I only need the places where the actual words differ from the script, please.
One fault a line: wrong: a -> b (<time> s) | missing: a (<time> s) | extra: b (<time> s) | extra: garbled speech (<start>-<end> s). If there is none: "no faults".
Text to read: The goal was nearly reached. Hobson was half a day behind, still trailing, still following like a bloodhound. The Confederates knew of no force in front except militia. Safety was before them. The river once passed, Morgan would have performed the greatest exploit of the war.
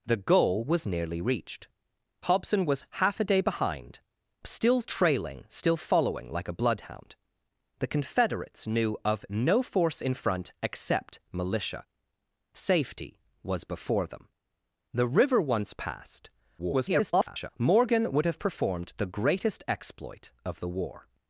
extra: garbled speech (16.6-17.5 s)